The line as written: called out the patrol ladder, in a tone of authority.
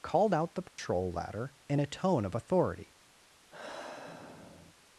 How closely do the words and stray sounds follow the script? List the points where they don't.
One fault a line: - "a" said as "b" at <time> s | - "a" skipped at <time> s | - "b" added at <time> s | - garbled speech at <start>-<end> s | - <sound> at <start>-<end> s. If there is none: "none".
- dropout at 0.7-0.8 s
- sigh at 3.5-4.7 s